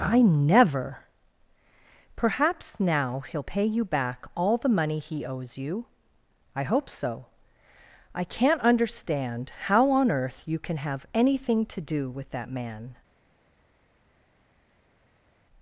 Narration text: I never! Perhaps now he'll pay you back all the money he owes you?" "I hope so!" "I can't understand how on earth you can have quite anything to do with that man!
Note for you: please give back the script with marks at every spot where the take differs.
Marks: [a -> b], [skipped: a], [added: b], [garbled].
I never! Perhaps now he'll pay you back all the money he owes you?" "I hope so!" "I can't understand how on earth you can have [skipped: quite] anything to do with that man!